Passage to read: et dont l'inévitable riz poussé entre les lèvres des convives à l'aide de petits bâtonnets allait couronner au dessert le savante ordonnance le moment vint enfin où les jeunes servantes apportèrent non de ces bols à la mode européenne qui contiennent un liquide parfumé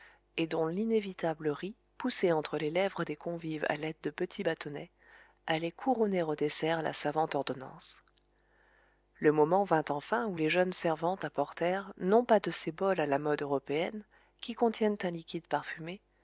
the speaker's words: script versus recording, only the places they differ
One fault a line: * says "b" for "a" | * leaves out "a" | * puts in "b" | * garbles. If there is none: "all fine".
* says "la" for "le"
* puts in "pas"